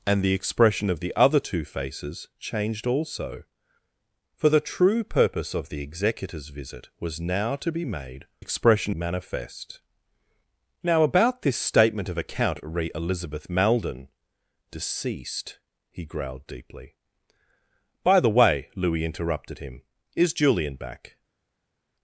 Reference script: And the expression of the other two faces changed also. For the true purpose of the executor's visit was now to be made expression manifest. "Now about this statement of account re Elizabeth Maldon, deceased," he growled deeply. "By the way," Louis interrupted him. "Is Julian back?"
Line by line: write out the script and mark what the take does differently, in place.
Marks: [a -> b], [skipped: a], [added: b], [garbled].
And the expression of the other two faces changed also. For the true purpose of the executor's visit was now to be made expression manifest. "Now about this statement of account re Elizabeth Maldon, deceased," he growled deeply. "By the way," Louis interrupted him. "Is Julian back?"